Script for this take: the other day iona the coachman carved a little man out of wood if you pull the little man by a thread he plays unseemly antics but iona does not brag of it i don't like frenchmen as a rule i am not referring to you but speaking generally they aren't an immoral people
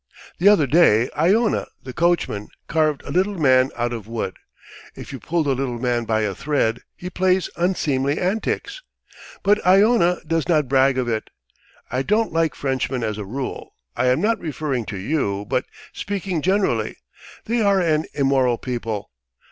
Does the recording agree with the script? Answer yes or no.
no